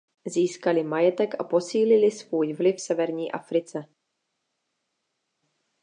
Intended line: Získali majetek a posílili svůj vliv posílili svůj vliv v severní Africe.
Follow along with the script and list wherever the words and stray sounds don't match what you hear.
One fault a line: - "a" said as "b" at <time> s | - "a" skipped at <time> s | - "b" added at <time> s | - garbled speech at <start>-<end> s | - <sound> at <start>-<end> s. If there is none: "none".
- "posílili svůj vliv" skipped at 2.8 s